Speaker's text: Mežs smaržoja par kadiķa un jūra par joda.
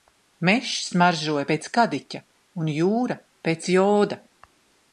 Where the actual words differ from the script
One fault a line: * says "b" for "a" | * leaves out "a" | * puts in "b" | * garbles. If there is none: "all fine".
* says "pēc" for "par"
* says "pēc" for "par"